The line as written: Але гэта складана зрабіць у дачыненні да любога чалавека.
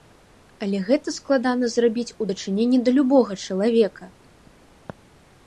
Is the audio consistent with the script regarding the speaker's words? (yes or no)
yes